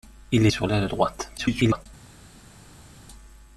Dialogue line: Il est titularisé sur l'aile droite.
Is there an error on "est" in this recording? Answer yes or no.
yes